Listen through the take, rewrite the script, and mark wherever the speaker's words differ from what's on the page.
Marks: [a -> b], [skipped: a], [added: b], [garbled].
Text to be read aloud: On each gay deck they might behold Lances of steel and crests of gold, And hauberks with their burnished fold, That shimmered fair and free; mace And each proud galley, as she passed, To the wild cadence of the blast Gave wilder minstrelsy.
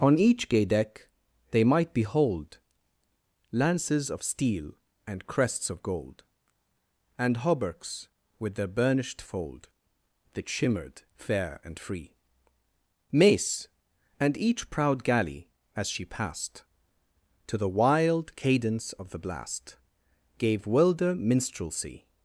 On each gay deck they might behold Lances of steel and crests of gold, And hauberks with their burnished fold, That shimmered fair and free; mace And each proud galley, as she passed, To the wild cadence of the blast Gave wilder minstrelsy.